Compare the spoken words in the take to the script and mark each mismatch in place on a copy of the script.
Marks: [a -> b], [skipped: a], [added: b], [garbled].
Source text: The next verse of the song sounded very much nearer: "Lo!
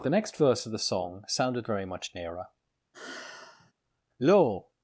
The next verse of the song sounded very much nearer: "Lo!